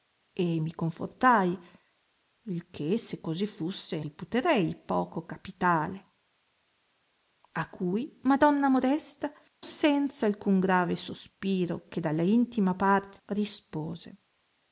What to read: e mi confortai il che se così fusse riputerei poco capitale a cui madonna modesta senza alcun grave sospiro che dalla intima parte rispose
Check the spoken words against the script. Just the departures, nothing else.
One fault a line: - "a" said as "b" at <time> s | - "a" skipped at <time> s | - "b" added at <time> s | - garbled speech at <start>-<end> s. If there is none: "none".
none